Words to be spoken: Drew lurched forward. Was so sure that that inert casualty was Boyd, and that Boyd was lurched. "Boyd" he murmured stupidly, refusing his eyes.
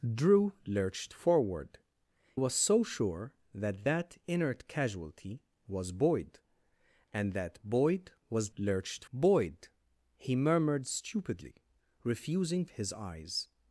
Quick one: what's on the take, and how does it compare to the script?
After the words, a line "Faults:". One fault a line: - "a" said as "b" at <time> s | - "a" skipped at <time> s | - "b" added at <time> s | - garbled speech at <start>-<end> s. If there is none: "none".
Drew lurched forward. Was so sure that that inert casualty was Boyd, and that Boyd was lurched. "Boyd" he murmured stupidly, refusing his eyes.
Faults:
none